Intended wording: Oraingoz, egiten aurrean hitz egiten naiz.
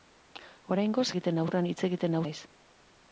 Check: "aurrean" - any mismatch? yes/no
no